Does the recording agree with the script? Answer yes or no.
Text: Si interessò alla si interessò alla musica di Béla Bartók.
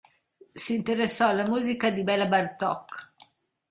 no